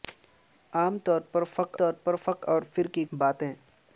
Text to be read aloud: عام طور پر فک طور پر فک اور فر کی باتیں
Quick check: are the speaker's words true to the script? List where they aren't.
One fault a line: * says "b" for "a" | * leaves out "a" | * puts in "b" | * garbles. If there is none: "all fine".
all fine